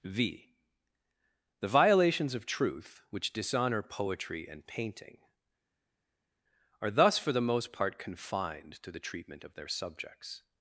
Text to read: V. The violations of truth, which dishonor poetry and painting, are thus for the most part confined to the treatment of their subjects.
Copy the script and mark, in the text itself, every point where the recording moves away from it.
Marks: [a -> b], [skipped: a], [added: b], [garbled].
V. The violations of truth, which dishonor poetry and painting, are thus for the most part confined to the treatment of their subjects.